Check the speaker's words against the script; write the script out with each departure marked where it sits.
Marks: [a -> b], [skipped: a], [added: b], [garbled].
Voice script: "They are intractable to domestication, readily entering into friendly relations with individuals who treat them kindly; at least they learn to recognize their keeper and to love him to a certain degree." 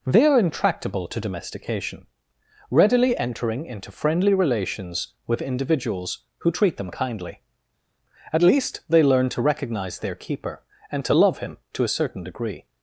"They are intractable to domestication, readily entering into friendly relations with individuals who treat them kindly; at least they learn to recognize their keeper and to love him to a certain degree."